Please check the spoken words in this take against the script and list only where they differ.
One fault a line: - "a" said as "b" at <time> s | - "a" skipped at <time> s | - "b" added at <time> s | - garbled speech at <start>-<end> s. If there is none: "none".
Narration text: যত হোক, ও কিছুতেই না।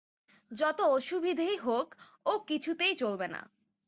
- "অসুবিধেই" added at 0.9 s
- "চলবে" added at 3.0 s